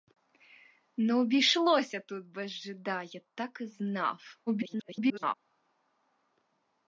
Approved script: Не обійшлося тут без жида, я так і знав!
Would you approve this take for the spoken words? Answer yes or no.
no